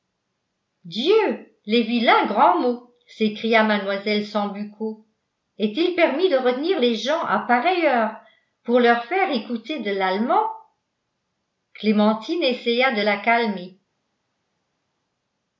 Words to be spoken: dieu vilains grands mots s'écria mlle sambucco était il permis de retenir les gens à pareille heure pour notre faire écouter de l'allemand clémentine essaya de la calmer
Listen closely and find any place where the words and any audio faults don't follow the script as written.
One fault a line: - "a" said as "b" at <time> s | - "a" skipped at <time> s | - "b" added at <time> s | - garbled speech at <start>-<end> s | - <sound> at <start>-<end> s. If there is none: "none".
- "les" added at 1.7 s
- "était" said as "est" at 5.6 s
- "notre" said as "leur" at 8.8 s